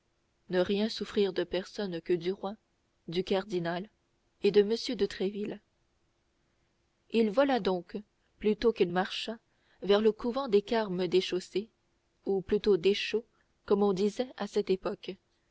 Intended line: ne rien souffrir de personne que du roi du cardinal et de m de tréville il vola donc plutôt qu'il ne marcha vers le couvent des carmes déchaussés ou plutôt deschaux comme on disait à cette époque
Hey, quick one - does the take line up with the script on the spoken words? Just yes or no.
no